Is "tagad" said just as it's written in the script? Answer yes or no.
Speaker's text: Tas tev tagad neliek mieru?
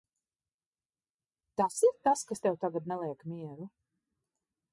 yes